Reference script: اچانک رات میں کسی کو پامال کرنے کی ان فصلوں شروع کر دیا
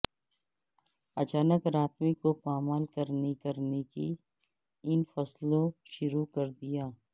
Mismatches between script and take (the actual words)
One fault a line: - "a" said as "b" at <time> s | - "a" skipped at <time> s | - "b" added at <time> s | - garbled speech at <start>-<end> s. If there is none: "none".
- "کسی" skipped at 2.1 s
- "کرنے" added at 3.4 s